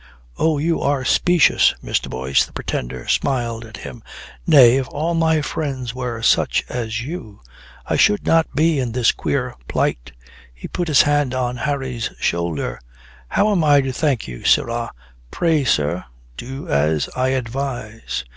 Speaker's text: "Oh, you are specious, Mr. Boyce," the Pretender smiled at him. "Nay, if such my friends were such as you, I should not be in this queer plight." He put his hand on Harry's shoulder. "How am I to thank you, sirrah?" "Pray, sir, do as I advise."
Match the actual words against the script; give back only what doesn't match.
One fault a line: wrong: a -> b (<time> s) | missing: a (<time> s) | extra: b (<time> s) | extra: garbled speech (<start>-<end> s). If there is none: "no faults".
wrong: such -> all (4.9 s)